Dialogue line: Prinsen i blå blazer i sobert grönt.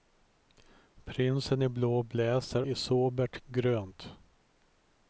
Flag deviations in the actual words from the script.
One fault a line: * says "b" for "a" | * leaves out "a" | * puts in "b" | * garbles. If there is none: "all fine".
all fine